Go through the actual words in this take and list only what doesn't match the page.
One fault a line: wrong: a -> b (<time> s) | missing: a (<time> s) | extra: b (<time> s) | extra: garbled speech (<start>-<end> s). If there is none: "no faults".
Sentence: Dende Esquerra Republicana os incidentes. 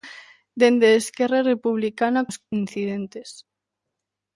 no faults